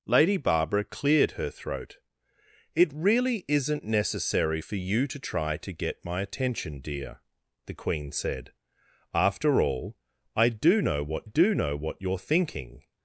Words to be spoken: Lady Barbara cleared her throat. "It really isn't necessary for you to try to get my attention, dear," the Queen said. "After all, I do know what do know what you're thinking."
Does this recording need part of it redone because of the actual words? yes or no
no